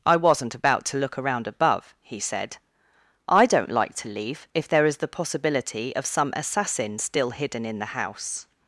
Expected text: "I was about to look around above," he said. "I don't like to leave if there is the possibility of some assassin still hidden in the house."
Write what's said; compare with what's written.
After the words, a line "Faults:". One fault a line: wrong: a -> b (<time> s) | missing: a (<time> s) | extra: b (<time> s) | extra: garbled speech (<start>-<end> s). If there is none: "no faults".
"I wasn't about to look around above," he said. "I don't like to leave if there is the possibility of some assassin still hidden in the house."
Faults:
wrong: was -> wasn't (0.2 s)